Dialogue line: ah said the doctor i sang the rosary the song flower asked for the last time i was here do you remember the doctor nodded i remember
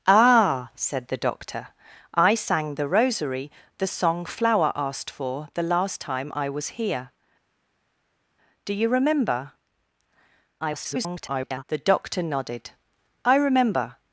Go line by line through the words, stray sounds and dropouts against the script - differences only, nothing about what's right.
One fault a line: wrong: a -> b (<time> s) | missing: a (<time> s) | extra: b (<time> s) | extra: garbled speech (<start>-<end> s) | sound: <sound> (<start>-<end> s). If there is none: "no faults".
extra: garbled speech (10.6-11.6 s)